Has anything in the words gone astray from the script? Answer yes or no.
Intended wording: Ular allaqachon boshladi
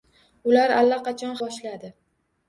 no